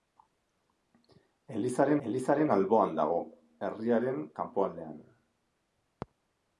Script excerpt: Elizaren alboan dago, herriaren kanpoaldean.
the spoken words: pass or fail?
fail